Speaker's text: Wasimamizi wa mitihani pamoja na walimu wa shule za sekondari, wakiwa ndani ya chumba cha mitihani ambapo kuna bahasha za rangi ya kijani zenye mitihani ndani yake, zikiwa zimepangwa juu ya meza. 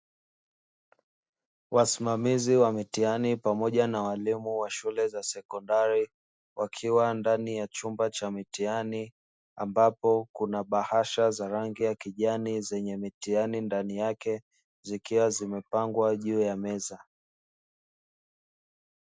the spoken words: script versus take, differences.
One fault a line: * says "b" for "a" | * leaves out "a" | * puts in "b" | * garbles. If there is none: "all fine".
all fine